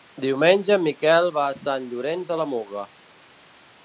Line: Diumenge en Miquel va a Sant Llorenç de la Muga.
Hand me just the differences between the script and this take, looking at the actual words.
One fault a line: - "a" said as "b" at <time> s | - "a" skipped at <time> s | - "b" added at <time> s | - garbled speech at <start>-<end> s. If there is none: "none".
none